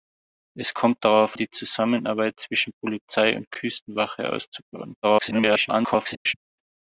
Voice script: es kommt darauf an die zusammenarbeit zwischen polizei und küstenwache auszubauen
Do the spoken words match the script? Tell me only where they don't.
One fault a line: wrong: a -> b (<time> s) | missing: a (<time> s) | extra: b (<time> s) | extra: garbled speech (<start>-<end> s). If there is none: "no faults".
missing: an (1.4 s)
extra: garbled speech (5.0-6.3 s)